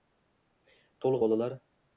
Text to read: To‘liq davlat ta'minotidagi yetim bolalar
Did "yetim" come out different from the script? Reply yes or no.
yes